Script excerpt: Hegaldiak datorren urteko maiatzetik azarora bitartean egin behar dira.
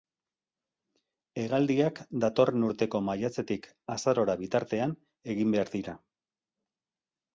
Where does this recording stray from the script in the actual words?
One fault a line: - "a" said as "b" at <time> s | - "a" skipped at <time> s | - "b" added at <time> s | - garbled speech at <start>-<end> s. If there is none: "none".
none